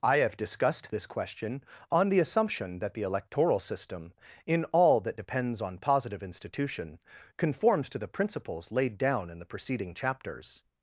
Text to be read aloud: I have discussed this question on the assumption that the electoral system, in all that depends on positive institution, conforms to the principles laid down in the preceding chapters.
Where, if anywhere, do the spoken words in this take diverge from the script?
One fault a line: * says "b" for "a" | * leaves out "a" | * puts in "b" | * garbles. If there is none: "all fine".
all fine